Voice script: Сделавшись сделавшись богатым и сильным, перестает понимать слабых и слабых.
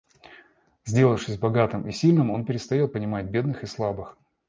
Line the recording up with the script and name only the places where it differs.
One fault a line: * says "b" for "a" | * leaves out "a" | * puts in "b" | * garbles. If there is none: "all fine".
* leaves out "сделавшись"
* puts in "он"
* says "бедных" for "слабых"